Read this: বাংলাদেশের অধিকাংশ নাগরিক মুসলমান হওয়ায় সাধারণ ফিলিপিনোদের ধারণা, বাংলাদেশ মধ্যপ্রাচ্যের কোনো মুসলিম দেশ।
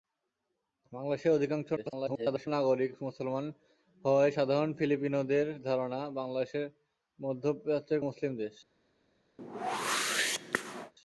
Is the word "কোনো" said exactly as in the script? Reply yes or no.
no